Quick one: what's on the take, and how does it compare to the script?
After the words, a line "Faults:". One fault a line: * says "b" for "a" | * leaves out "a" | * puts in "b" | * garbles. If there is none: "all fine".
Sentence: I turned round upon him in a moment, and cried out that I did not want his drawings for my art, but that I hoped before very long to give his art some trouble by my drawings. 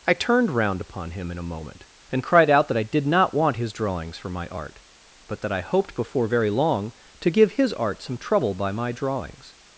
I turned round upon him in a moment, and cried out that I did not want his drawings for my art, but that I hoped before very long to give his art some trouble by my drawings.
Faults:
all fine